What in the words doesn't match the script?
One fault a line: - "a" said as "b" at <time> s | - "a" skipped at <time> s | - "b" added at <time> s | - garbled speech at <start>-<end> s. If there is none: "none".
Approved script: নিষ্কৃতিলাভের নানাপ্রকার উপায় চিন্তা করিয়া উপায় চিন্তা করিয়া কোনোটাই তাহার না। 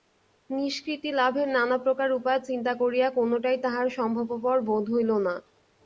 - "উপায় চিন্তা করিয়া কোনোটাই তাহার" said as "কোনোটাই তাহার সম্ভবপর বোধ হইল" at 3.1 s